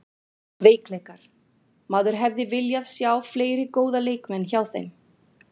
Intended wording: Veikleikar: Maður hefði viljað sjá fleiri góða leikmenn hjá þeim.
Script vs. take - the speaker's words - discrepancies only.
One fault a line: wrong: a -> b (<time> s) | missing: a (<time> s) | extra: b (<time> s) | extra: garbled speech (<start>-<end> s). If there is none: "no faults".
no faults